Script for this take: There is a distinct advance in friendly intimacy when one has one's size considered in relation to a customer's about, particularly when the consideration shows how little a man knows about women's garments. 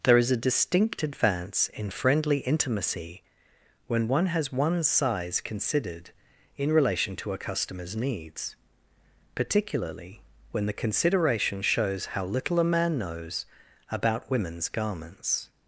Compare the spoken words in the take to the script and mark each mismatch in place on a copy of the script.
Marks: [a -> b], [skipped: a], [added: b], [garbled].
There is a distinct advance in friendly intimacy when one has one's size considered in relation to a customer's [about, -> needs] particularly when the consideration shows how little a man knows about women's garments.